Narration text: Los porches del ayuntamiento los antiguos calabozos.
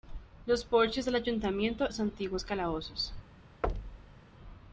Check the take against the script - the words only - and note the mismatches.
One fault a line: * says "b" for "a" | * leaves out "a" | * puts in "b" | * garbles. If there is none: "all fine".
all fine